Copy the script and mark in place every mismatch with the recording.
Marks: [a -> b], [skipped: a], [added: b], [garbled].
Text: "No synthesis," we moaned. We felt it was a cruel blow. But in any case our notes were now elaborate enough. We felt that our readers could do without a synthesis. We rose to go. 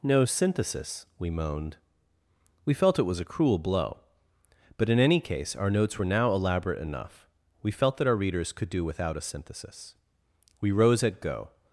"No synthesis," we moaned. We felt it was a cruel blow. But in any case our notes were now elaborate enough. We felt that our readers could do without a synthesis. We rose [to -> at] go.